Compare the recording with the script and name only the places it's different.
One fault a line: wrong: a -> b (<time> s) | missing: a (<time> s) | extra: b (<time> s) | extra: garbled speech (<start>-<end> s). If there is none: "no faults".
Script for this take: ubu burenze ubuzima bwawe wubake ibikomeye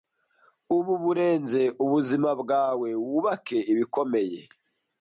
no faults